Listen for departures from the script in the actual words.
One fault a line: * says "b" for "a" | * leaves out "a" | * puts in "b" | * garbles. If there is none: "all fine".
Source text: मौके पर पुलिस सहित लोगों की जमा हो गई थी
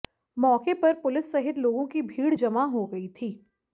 * puts in "भीड़"